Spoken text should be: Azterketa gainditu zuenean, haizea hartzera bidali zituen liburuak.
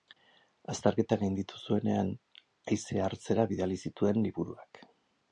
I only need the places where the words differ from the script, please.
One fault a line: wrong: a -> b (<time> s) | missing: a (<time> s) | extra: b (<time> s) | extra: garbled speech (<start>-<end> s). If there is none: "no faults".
no faults